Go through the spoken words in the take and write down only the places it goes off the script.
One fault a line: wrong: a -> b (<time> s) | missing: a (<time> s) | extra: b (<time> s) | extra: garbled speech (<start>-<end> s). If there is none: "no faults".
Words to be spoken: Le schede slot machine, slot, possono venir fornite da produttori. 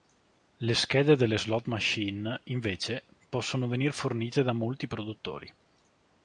extra: delle (1.2 s)
wrong: slot -> invece (2.4 s)
extra: molti (4.5 s)